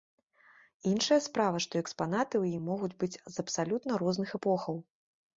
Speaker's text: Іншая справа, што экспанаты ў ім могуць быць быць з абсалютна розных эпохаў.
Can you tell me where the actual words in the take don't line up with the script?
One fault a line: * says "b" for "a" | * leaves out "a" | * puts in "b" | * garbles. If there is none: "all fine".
* leaves out "быць"